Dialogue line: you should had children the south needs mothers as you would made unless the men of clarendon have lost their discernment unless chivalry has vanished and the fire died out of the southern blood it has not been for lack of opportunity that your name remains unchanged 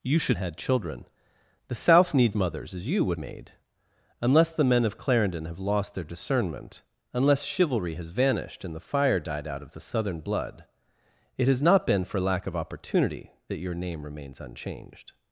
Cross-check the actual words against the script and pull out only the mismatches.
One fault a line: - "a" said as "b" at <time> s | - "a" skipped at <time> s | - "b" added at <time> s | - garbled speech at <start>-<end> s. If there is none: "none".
none